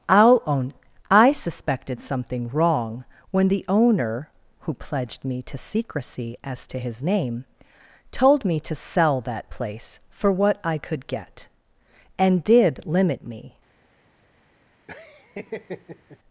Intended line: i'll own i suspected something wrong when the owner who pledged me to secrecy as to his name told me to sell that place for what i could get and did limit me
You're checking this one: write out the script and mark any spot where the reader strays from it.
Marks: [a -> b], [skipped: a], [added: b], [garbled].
i'll own i suspected something wrong when the owner who pledged me to secrecy as to his name told me to sell that place for what i could get and did limit me